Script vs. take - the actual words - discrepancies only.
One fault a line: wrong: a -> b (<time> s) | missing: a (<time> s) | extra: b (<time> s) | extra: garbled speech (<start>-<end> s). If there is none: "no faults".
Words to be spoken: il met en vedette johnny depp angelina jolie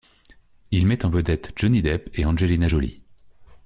extra: et (2.1 s)